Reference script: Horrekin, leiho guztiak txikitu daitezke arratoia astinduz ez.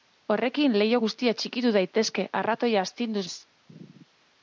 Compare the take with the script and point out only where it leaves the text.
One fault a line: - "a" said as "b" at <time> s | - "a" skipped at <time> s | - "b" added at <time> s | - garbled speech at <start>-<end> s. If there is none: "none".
none